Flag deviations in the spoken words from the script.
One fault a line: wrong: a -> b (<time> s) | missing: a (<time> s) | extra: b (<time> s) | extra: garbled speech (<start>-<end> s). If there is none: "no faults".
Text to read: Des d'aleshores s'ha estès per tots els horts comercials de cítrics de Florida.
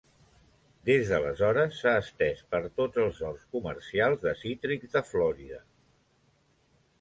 no faults